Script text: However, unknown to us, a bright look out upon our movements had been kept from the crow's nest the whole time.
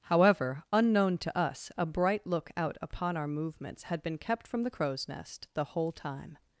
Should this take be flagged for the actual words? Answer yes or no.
no